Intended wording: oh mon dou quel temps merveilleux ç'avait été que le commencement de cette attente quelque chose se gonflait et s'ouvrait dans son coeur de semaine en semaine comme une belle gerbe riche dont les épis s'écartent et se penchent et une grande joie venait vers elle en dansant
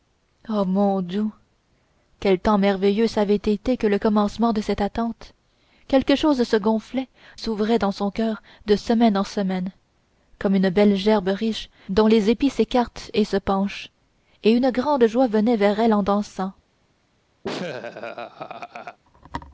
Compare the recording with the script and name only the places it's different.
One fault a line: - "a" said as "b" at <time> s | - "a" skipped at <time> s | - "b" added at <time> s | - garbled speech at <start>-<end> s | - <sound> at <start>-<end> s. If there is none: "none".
- "et" skipped at 7.1 s
- laugh at 17.4-19.0 s